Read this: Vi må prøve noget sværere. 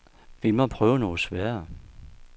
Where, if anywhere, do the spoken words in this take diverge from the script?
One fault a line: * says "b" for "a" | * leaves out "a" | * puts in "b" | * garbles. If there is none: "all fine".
all fine